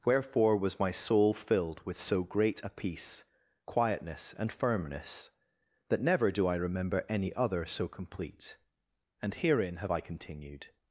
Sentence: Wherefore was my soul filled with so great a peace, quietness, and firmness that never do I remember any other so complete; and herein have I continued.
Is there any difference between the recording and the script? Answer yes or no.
no